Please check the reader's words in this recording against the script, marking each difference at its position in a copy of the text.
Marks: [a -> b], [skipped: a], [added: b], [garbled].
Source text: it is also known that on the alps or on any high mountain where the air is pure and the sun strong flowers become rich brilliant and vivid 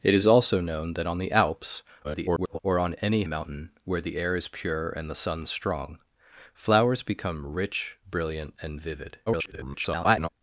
it is also known that on the alps [garbled] or on any [skipped: high] mountain where the air is pure and the sun strong flowers become rich brilliant and vivid [garbled]